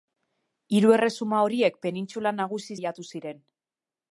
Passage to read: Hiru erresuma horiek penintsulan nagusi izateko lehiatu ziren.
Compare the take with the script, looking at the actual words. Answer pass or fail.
fail